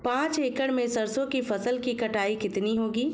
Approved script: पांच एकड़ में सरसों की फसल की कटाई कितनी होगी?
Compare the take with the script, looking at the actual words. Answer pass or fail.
pass